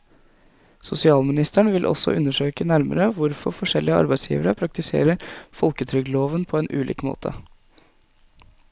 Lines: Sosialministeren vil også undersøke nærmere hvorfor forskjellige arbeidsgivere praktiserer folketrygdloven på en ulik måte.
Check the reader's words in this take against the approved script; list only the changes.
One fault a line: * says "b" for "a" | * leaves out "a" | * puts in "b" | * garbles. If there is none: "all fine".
all fine